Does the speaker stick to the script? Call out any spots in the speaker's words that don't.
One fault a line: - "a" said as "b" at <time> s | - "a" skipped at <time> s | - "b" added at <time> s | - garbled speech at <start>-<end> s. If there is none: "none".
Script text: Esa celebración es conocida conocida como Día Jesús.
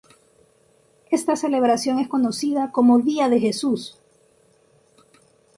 - "Esa" said as "Esta" at 1.1 s
- "conocida" skipped at 2.7 s
- "de" added at 3.3 s